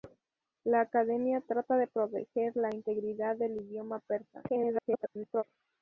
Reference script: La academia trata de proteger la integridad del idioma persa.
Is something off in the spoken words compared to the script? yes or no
yes